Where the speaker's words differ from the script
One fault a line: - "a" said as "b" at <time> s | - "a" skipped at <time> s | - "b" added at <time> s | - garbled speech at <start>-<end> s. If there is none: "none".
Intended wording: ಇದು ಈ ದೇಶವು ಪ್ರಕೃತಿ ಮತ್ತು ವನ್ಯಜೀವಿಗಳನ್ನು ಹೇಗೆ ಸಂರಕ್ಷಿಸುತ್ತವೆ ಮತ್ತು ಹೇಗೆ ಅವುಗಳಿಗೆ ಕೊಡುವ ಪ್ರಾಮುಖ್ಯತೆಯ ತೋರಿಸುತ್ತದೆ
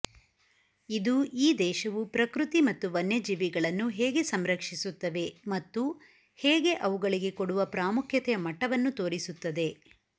- "ಮಟ್ಟವನ್ನು" added at 8.5 s